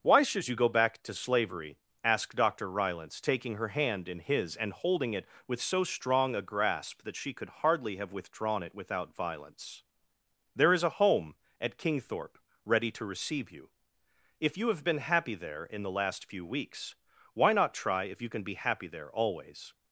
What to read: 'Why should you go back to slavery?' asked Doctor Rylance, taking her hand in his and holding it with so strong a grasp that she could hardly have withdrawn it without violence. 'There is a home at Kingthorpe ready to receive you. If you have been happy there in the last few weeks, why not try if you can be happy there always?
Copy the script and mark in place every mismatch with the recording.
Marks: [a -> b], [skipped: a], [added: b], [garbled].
'Why should you go back to slavery?' asked Doctor Rylance, taking her hand in his and holding it with so strong a grasp that she could hardly have withdrawn it without violence. 'There is a home at Kingthorpe ready to receive you. If you have been happy there in the last few weeks, why not try if you can be happy there always?